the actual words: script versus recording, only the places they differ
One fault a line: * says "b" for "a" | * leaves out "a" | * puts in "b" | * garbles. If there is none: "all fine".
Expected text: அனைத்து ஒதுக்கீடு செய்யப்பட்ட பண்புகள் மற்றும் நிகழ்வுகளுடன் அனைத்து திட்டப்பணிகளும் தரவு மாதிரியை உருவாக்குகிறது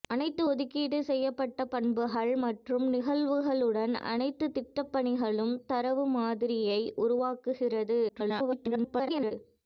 * garbles